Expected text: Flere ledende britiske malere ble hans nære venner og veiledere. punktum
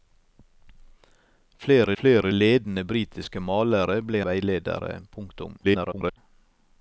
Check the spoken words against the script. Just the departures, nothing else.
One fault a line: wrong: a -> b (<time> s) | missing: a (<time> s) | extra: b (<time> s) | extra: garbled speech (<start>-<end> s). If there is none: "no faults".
extra: flere (2.0 s)
missing: hans nære venner (4.2 s)
extra: garbled speech (5.6-6.2 s)